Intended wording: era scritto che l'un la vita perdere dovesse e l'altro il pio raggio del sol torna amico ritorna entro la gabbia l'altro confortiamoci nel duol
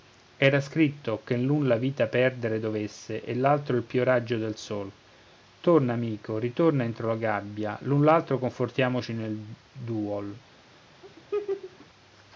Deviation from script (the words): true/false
true